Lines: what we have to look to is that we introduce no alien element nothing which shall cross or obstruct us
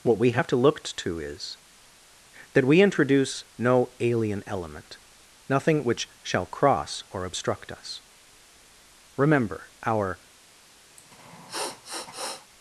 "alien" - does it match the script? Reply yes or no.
yes